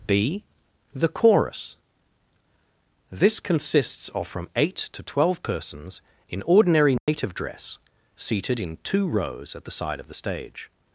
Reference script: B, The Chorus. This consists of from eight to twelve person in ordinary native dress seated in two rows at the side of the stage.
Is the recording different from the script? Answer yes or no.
yes